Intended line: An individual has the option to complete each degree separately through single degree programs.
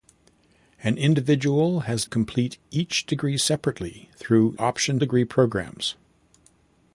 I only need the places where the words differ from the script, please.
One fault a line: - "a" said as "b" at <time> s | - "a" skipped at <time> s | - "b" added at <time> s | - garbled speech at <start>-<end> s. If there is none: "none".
- "the option to" skipped at 2.0 s
- "single" said as "option" at 4.6 s